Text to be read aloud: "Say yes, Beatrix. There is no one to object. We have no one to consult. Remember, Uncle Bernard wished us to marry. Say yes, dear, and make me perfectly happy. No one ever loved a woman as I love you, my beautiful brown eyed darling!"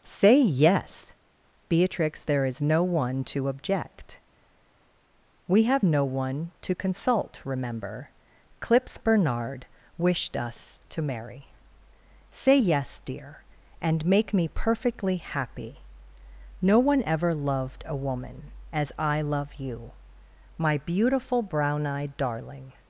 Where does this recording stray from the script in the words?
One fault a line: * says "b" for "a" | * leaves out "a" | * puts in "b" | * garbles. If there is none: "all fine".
* says "Clips" for "Uncle"